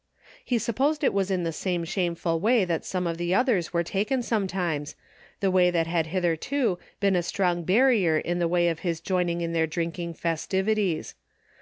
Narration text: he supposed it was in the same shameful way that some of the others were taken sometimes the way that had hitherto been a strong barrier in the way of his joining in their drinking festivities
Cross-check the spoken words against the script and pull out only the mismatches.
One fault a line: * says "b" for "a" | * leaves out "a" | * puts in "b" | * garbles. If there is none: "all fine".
all fine